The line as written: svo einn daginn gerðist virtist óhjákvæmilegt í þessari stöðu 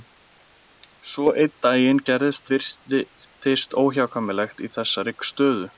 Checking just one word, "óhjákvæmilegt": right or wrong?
right